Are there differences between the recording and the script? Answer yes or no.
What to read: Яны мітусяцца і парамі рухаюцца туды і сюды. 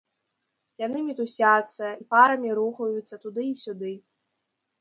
no